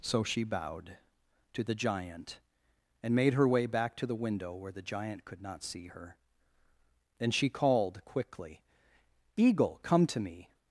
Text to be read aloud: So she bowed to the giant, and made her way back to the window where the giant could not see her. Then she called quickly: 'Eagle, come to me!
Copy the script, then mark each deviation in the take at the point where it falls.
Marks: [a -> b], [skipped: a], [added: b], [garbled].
So she bowed to the giant, and made her way back to the window where the giant could not see her. Then she called quickly: 'Eagle, come to me!